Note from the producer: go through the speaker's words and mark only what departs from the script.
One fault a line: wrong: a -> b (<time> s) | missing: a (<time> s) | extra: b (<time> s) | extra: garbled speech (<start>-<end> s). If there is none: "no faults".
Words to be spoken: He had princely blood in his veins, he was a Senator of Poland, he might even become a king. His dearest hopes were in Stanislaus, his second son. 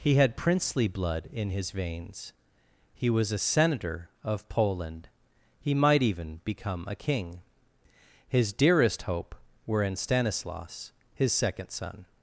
wrong: hopes -> hope (9.0 s)